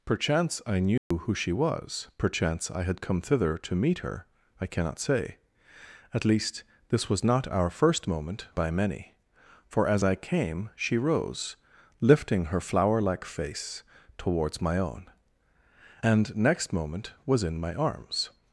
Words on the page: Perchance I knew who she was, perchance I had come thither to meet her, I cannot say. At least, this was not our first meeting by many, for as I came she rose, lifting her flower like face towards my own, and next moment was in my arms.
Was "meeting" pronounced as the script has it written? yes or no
no